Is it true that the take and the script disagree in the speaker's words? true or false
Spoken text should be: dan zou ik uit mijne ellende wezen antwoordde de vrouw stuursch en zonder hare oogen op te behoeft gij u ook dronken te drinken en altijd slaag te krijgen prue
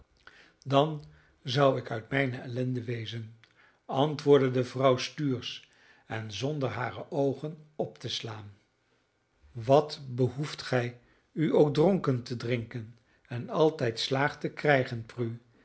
true